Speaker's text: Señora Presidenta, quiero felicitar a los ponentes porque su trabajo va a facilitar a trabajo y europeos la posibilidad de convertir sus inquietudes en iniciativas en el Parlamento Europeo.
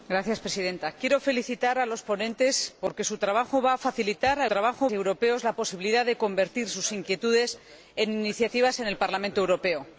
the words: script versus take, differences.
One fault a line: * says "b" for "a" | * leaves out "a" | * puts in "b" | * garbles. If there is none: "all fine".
all fine